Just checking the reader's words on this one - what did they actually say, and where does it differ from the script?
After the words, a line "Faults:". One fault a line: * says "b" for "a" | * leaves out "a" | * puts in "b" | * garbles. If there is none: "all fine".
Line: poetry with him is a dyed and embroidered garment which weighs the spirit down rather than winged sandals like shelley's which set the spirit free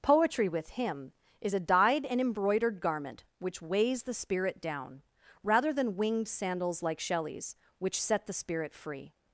poetry with him is a dyed and embroidered garment which weighs the spirit down rather than winged sandals like shelley's which set the spirit free
Faults:
all fine